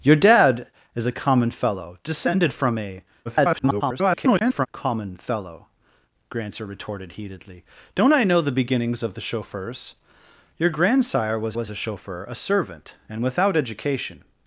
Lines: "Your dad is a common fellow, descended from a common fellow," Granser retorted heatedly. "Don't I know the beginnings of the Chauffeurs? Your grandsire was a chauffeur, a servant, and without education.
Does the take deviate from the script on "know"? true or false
false